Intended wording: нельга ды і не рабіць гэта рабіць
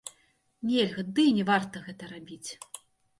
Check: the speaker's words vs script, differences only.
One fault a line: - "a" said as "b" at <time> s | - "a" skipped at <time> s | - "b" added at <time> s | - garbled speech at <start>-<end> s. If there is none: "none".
- "рабіць" said as "варта" at 1.5 s